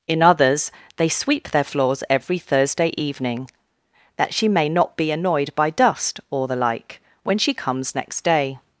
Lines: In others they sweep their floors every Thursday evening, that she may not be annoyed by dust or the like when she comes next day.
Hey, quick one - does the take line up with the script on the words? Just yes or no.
yes